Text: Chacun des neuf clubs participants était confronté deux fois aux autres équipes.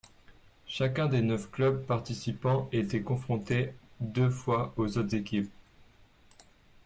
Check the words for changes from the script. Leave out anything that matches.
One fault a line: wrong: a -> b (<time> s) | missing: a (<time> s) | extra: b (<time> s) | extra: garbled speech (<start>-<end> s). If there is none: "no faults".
no faults